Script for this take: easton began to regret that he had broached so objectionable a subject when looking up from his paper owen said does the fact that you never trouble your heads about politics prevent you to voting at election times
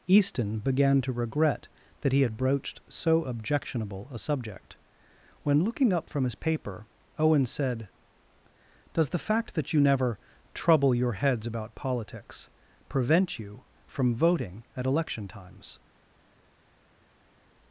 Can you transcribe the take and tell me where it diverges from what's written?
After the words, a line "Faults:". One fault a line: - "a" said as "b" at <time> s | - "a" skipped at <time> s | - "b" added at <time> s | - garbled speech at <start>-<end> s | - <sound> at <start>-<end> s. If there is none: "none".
easton began to regret that he had broached so objectionable a subject when looking up from his paper owen said does the fact that you never trouble your heads about politics prevent you from voting at election times
Faults:
- "to" said as "from" at 13.8 s